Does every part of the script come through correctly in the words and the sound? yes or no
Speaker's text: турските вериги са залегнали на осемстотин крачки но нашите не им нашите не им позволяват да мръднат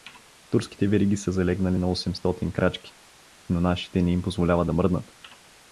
no